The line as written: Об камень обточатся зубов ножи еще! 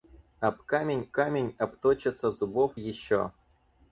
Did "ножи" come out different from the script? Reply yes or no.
yes